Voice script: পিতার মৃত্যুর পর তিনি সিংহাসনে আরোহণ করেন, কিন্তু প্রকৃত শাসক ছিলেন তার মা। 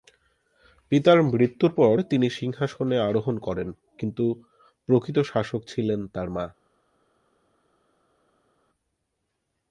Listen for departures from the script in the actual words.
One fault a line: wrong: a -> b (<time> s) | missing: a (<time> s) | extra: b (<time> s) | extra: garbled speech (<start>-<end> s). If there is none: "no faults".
no faults